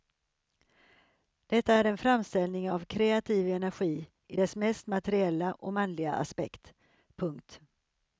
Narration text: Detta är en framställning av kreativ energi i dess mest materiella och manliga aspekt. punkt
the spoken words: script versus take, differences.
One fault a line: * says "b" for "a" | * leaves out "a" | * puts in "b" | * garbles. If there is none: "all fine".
all fine